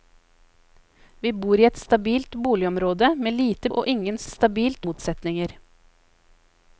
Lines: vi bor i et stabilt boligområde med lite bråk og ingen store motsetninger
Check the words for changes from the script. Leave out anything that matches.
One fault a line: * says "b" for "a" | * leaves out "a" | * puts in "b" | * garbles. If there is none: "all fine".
* leaves out "bråk"
* says "stabilt" for "store"